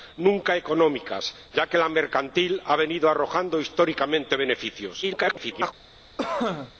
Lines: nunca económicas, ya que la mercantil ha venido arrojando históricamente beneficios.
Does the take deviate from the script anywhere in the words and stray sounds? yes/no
yes